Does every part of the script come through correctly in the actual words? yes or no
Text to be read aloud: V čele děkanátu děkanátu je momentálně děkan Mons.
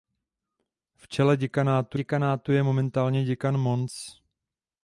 yes